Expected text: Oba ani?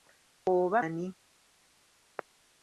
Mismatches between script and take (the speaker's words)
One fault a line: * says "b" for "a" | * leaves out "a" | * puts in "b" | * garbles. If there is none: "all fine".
all fine